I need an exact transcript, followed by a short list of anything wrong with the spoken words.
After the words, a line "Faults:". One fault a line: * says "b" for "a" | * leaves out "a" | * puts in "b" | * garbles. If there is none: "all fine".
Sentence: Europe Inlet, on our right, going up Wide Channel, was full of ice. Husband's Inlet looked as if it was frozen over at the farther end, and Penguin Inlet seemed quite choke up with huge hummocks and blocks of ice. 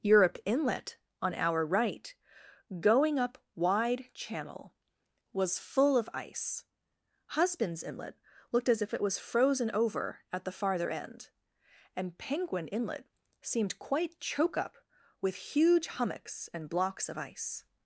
Europe Inlet, on our right, going up Wide Channel, was full of ice. Husband's Inlet looked as if it was frozen over at the farther end, and Penguin Inlet seemed quite choke up with huge hummocks and blocks of ice.
Faults:
all fine